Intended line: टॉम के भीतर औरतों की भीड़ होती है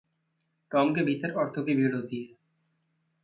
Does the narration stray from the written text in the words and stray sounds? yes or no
no